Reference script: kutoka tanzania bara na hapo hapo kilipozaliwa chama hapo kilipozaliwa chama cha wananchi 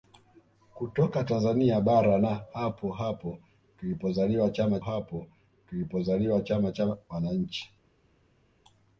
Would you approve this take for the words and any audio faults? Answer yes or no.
yes